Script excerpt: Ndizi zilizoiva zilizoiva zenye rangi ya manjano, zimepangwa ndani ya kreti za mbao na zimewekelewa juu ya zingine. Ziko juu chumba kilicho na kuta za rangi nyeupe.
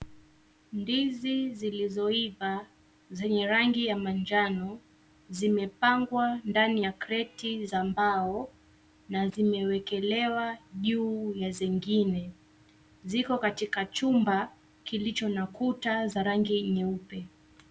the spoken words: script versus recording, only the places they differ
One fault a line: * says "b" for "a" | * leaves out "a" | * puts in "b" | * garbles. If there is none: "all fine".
* leaves out "zilizoiva"
* says "katika" for "juu"